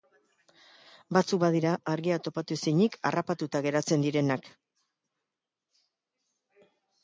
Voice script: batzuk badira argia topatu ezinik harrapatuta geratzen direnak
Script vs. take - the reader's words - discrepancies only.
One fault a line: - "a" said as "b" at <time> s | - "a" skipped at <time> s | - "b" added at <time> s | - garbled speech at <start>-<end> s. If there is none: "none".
none